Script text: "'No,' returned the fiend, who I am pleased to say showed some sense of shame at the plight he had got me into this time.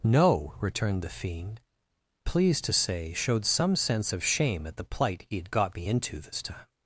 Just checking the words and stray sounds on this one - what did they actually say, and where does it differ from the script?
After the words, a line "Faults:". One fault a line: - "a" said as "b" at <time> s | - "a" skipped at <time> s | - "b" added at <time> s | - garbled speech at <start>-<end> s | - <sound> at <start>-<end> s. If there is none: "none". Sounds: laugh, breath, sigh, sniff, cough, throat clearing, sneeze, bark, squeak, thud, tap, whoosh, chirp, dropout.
"'No,' returned the fiend, pleased to say showed some sense of shame at the plight he had got me into this time.
Faults:
- "who I am" skipped at 1.6 s